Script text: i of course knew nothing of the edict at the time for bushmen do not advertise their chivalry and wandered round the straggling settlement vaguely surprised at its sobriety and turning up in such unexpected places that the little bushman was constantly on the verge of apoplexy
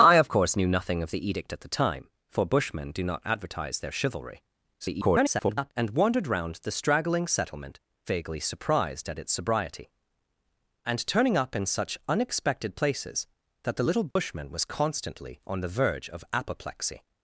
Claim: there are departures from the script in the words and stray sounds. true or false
true